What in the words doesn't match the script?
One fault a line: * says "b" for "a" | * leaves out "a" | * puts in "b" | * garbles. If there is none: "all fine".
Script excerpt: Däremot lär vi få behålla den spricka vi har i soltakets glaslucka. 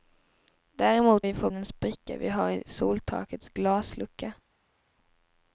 * leaves out "lär"
* leaves out "behålla"